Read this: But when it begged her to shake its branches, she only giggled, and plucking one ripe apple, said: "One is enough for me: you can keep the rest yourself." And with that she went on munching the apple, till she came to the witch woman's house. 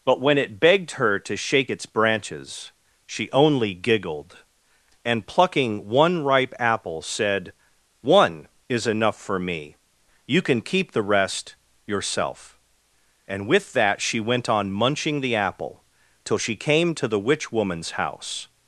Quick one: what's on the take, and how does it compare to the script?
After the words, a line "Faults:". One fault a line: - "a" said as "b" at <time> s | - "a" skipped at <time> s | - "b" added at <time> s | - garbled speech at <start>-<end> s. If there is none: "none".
But when it begged her to shake its branches, she only giggled, and plucking one ripe apple, said: "One is enough for me: you can keep the rest yourself." And with that she went on munching the apple, till she came to the witch woman's house.
Faults:
none